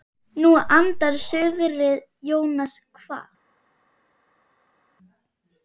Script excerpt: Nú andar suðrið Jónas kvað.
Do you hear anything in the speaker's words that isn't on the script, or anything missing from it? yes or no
no